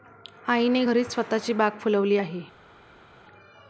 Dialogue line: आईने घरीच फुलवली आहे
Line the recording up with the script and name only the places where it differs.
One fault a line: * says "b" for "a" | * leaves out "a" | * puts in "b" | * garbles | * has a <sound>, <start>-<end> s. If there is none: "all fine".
* puts in "स्वतःची बाग"